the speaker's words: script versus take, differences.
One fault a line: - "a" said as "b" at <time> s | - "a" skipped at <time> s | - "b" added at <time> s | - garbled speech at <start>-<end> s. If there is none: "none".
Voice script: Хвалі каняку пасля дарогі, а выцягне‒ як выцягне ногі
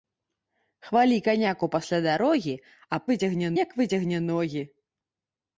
none